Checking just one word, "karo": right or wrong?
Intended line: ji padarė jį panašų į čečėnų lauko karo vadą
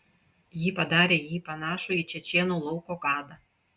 wrong